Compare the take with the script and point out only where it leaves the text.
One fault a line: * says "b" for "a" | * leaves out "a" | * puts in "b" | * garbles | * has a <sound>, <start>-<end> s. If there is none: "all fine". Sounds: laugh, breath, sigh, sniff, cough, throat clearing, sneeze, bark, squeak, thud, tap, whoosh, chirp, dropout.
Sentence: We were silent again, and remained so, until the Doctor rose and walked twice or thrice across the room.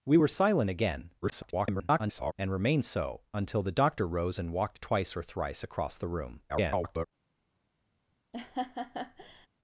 * garbles
* garbles
* has a laugh, 8.3-9.5 s